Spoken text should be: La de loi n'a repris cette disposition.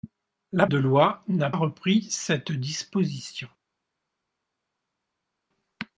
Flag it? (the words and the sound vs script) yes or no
no